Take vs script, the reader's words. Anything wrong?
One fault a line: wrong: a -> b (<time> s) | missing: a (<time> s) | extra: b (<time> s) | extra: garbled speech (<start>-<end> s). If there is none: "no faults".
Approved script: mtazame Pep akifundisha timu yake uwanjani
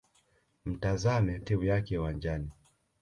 missing: Pep akifundisha (1.4 s)